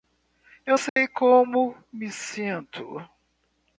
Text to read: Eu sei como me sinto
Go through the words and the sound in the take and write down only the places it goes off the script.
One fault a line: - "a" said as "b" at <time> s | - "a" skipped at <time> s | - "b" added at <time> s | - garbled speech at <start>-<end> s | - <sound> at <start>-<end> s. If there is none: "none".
- dropout at 0.9-1.0 s